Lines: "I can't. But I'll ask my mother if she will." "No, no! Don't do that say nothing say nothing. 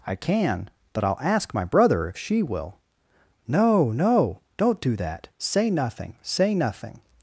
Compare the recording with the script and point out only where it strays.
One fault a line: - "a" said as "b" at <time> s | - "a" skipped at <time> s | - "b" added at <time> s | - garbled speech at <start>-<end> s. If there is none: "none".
- "can't" said as "can" at 0.1 s
- "mother" said as "brother" at 1.6 s